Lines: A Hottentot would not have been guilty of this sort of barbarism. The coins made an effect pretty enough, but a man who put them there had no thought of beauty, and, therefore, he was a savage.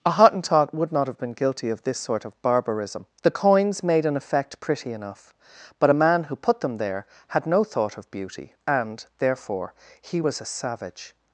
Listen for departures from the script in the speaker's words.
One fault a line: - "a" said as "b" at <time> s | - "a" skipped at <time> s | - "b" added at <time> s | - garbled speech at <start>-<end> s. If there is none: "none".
none